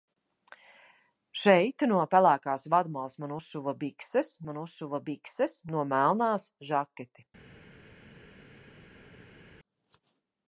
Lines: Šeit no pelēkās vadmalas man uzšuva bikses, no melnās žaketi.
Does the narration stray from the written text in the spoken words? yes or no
yes